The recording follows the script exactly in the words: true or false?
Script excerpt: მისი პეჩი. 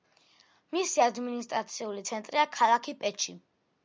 false